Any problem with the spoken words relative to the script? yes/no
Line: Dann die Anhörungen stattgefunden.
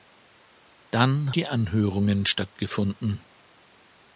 no